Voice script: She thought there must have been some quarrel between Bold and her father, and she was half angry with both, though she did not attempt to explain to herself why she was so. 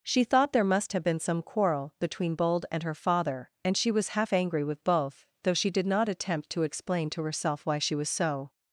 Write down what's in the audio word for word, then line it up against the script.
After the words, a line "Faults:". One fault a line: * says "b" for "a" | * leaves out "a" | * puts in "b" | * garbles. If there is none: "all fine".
She thought there must have been some quarrel between Bold and her father, and she was half angry with both, though she did not attempt to explain to herself why she was so.
Faults:
all fine